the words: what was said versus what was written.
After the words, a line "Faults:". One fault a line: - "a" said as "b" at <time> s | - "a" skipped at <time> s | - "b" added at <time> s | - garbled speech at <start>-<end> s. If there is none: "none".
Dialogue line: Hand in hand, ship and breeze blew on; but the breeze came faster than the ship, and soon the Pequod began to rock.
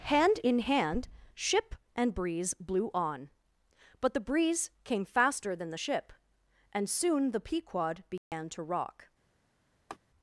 Hand in hand, ship and breeze blew on; but the breeze came faster than the ship, and soon the Pequod began to rock.
Faults:
none